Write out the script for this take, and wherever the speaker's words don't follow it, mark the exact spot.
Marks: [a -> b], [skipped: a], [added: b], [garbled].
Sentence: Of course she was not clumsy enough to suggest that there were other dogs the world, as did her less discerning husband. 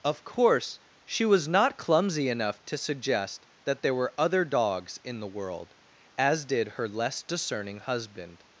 Of course she was not clumsy enough to suggest that there were other dogs [added: in] the world, as did her less discerning husband.